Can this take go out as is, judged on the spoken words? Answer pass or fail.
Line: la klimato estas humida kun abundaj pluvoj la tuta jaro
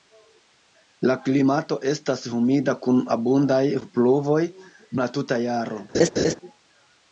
pass